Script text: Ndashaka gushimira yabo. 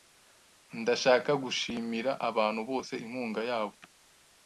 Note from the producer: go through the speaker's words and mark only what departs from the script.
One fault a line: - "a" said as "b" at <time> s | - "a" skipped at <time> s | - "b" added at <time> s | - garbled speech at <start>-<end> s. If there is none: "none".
- "abantu bose inkunga" added at 2.3 s